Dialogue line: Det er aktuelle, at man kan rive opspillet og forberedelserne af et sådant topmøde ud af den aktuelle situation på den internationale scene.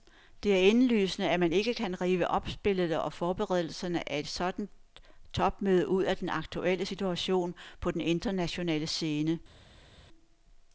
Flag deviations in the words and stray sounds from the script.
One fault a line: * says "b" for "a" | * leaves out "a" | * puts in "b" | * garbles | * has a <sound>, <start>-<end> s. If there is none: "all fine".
* says "indlysende" for "aktuelle"
* puts in "ikke"